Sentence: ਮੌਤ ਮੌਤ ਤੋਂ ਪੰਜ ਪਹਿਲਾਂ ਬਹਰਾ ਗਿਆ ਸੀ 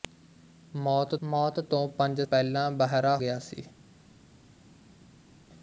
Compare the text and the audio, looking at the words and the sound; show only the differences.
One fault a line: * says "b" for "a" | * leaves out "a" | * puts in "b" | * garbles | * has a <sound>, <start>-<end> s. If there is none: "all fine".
all fine